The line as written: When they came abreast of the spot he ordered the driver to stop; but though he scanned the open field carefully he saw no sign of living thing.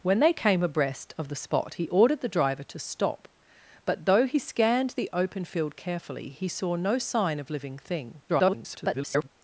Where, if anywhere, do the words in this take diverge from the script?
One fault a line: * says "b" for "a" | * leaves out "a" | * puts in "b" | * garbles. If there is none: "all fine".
* garbles